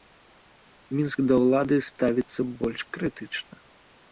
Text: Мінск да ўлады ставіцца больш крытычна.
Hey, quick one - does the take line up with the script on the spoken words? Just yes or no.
yes